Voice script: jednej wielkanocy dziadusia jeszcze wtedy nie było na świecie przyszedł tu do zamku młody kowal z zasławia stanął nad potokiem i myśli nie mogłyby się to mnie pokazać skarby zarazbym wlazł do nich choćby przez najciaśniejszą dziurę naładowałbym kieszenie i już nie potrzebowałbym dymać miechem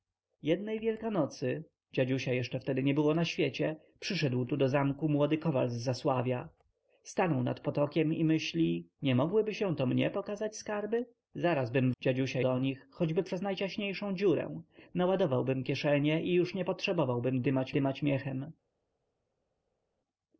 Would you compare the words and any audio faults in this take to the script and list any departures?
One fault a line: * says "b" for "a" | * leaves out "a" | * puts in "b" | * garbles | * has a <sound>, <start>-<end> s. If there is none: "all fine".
* says "dziadusia" for "wlazł"
* puts in "dymać"